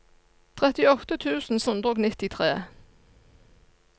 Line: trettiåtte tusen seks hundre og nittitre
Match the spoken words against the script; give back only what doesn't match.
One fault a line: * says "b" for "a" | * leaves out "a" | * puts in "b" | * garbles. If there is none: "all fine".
* leaves out "seks"